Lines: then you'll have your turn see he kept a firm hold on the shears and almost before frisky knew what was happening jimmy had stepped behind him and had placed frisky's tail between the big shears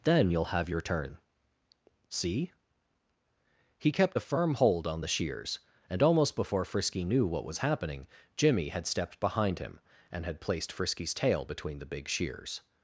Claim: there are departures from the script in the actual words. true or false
false